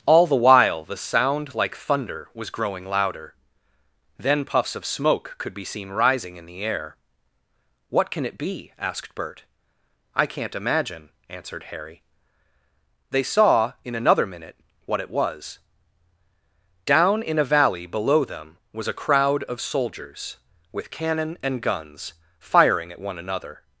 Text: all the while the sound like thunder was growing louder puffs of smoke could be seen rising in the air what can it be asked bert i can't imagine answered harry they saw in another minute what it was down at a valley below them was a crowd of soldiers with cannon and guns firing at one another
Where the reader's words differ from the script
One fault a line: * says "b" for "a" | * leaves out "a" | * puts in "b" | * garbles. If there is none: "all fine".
* puts in "then"
* says "in" for "at"